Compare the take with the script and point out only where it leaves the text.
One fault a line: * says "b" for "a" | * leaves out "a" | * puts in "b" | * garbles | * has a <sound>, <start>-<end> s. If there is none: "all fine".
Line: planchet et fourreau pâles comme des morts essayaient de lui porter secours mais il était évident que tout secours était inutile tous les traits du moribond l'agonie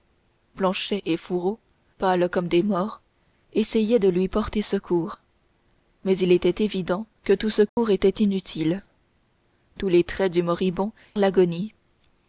* has a dropout, 7.7-7.8 s